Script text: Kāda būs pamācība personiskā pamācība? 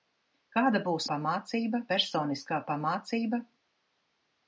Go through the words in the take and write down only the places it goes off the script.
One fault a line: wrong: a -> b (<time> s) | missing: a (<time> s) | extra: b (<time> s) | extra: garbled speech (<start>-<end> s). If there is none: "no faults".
no faults